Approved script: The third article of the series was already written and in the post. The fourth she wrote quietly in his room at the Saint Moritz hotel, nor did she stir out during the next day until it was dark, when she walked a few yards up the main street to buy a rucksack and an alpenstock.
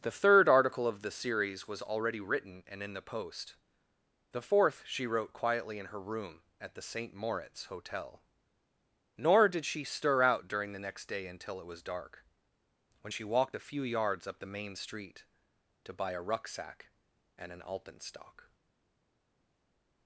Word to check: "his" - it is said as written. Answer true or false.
false